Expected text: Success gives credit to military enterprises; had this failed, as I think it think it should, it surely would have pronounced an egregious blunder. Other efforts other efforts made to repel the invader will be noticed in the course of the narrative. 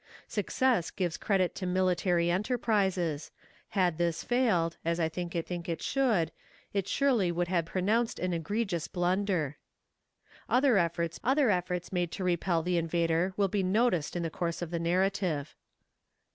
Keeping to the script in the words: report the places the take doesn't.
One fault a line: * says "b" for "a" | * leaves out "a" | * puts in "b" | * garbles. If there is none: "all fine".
all fine